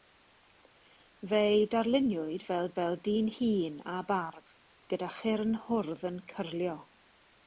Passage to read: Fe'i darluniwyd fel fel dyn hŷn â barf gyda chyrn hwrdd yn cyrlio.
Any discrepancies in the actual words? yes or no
no